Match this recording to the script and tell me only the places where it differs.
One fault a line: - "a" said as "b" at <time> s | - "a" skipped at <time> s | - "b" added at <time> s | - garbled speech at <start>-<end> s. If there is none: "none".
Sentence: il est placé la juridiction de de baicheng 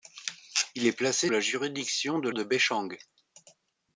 none